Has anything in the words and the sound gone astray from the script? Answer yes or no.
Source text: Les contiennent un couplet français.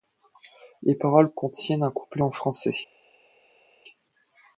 yes